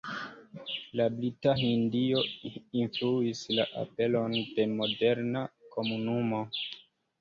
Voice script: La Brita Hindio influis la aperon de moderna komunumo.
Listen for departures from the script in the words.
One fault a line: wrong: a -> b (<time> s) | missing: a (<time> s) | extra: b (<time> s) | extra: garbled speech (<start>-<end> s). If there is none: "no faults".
no faults